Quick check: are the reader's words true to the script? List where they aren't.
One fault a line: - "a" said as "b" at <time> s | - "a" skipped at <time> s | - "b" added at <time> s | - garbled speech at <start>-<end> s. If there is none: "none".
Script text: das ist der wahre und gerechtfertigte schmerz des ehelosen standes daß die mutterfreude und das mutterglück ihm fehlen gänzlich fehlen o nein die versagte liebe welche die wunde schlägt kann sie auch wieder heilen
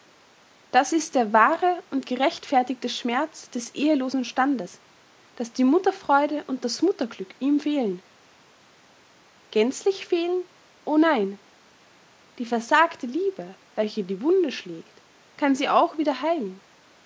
none